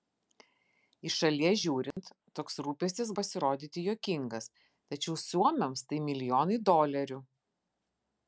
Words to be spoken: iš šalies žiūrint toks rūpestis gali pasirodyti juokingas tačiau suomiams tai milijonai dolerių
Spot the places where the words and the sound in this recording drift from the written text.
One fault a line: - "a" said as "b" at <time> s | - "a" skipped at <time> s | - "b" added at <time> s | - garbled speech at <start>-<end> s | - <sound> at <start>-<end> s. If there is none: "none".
- dropout at 1.9-2.0 s
- "gali" skipped at 3.1 s